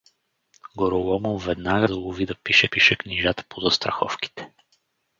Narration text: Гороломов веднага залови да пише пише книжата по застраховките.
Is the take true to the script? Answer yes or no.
yes